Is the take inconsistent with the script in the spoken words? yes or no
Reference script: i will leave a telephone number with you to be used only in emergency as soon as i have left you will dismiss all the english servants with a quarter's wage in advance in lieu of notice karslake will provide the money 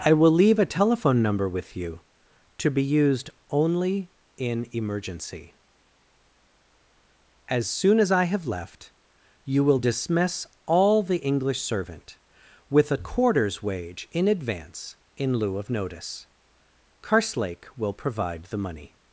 yes